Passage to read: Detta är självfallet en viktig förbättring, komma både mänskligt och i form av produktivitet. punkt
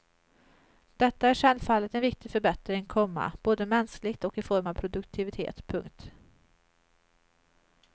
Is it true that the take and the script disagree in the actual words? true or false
false